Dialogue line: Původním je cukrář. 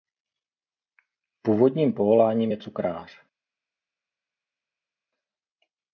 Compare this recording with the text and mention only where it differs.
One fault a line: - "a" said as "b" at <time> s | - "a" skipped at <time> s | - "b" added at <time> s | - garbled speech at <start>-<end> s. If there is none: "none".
- "povoláním" added at 1.9 s